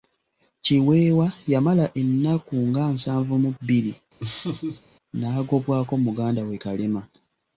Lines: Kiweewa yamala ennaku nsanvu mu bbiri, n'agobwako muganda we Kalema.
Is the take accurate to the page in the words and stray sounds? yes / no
no